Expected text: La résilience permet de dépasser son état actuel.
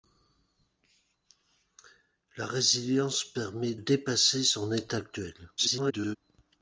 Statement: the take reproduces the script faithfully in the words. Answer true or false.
false